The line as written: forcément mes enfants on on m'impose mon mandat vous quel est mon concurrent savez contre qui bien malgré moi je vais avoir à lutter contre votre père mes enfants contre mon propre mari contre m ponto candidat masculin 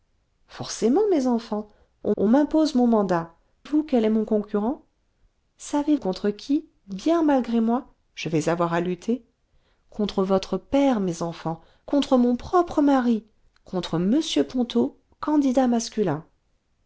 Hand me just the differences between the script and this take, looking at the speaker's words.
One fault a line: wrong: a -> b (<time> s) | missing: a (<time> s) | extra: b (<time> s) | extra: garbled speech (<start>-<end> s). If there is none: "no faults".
no faults